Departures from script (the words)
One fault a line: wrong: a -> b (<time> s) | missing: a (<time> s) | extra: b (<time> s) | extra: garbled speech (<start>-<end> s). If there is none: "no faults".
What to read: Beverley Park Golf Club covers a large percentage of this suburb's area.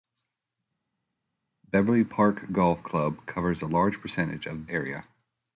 missing: this suburb's (4.7 s)